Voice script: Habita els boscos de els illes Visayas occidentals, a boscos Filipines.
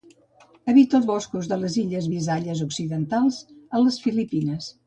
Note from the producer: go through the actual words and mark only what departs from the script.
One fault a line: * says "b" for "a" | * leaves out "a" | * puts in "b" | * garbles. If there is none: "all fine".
* says "les" for "els"
* says "les" for "boscos"